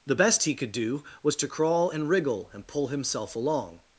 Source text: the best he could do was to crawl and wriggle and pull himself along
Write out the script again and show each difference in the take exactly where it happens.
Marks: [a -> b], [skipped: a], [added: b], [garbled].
the best he could do was to crawl and wriggle and pull himself along